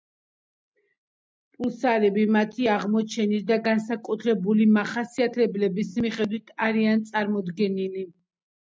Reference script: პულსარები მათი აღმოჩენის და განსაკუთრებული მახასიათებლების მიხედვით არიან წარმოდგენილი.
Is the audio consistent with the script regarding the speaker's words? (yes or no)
yes